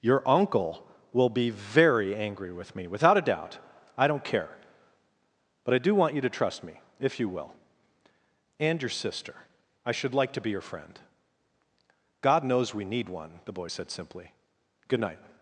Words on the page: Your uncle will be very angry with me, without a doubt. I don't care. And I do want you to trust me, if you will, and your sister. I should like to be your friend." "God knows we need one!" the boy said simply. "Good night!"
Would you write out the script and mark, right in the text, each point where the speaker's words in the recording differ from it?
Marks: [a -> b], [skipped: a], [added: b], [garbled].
Your uncle will be very angry with me, without a doubt. I don't care. [And -> But] I do want you to trust me, if you will, and your sister. I should like to be your friend." "God knows we need one!" the boy said simply. "Good night!"